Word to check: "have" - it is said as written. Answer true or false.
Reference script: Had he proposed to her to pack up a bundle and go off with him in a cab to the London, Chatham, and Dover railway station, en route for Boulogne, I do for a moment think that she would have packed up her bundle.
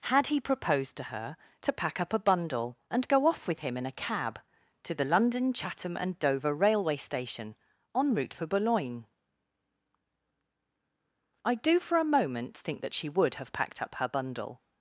true